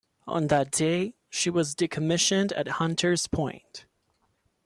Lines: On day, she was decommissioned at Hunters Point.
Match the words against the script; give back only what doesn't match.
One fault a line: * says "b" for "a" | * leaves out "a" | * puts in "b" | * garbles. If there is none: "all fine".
* puts in "that"